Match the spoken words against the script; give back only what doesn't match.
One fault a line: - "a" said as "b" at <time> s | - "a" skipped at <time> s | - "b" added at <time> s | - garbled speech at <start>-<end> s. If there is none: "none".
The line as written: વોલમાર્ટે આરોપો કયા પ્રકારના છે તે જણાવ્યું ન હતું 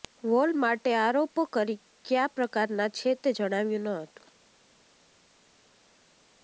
none